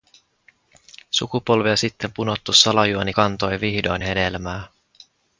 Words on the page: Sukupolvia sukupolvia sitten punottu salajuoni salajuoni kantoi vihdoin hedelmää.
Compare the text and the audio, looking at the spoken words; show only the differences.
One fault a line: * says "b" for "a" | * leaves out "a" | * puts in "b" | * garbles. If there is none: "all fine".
* leaves out "sukupolvia"
* leaves out "salajuoni"